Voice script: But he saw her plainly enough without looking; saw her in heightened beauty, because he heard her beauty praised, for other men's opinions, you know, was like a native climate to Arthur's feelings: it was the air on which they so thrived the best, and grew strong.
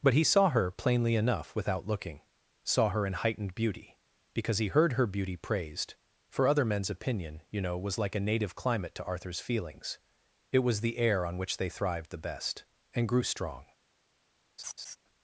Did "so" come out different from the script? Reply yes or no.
yes